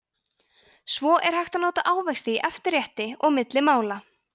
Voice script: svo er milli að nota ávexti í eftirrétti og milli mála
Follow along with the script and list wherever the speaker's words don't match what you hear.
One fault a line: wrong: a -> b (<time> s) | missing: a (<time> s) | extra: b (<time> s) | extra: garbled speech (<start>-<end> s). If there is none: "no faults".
wrong: milli -> hægt (1.4 s)